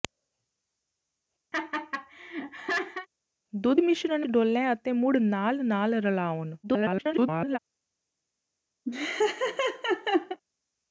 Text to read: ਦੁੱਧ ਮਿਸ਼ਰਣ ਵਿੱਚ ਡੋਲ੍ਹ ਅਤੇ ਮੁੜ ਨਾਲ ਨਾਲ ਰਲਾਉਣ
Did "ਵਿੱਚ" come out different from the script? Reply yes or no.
yes